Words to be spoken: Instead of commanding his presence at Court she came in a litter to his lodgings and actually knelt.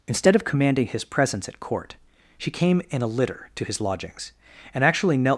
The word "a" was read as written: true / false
true